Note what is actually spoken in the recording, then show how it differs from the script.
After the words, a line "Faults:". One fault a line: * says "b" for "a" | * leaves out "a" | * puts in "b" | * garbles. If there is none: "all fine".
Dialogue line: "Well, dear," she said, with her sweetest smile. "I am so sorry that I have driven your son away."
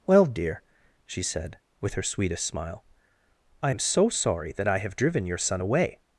"Well, dear," she said, with her sweetest smile. "I am so sorry that I have driven your son away."
Faults:
all fine